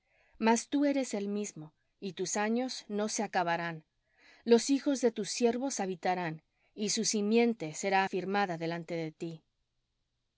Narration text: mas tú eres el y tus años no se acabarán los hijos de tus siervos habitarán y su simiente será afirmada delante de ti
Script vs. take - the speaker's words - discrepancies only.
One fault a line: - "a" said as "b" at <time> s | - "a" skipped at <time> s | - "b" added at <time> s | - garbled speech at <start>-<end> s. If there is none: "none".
- "mismo" added at 1.3 s